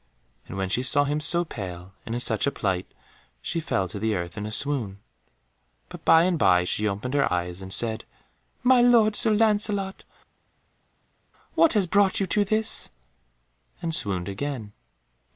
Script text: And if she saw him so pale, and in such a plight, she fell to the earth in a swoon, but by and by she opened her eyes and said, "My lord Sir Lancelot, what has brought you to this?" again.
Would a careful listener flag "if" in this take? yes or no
yes